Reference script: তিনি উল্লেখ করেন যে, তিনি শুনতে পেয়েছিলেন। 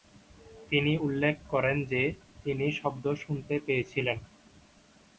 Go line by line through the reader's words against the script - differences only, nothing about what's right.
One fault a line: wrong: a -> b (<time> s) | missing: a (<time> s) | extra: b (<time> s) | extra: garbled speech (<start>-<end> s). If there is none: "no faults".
extra: শব্দ (2.7 s)